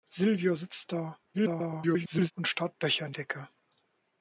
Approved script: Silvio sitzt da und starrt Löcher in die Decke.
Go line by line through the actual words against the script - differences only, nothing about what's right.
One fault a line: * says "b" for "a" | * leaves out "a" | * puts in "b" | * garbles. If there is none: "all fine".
* garbles
* leaves out "die"